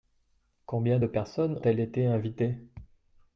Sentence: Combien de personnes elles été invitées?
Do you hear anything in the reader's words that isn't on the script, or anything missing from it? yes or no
no